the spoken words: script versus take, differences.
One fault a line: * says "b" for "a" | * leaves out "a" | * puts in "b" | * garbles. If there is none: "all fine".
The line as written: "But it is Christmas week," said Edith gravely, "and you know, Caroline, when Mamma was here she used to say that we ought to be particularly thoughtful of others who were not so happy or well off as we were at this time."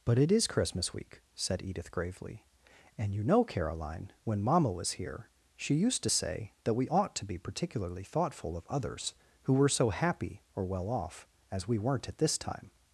* leaves out "not"
* says "weren't" for "were"